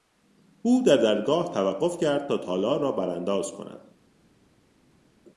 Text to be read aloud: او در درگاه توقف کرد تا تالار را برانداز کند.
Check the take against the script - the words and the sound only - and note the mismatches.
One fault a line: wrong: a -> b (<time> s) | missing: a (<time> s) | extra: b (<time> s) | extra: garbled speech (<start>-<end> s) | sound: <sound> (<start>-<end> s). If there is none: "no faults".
no faults